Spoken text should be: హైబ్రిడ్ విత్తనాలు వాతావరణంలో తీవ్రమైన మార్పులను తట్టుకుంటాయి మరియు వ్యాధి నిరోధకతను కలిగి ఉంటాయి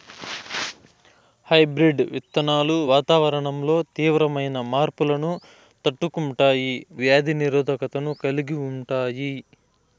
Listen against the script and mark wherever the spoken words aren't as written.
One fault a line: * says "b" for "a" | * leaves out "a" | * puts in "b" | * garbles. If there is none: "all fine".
* leaves out "మరియు"